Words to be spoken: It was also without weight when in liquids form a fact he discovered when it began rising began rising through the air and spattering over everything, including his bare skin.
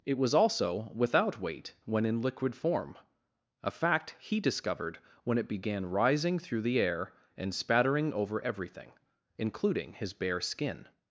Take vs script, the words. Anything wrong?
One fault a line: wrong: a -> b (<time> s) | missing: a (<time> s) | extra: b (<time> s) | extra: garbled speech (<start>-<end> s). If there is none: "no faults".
wrong: liquids -> liquid (2.2 s)
missing: began rising (6.4 s)